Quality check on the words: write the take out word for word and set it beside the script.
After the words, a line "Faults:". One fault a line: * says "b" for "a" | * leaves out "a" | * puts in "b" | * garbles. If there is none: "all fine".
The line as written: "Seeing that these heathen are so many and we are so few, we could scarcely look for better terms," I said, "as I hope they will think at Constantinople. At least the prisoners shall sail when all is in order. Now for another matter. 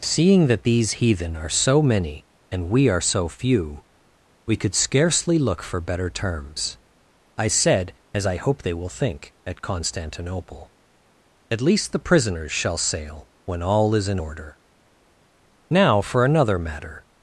"Seeing that these heathen are so many and we are so few, we could scarcely look for better terms," I said, "as I hope they will think at Constantinople. At least the prisoners shall sail when all is in order. Now for another matter.
Faults:
all fine